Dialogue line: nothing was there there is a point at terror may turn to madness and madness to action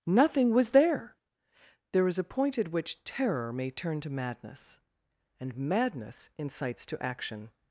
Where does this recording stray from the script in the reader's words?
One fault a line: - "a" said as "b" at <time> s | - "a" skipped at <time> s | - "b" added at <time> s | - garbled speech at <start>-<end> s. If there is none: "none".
- "which" added at 2.7 s
- "incites" added at 6.4 s